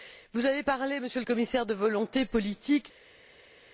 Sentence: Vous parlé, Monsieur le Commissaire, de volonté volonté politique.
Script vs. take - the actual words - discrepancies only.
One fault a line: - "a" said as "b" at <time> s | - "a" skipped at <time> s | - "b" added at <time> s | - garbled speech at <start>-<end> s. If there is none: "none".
- "avez" added at 0.5 s
- "volonté" skipped at 2.2 s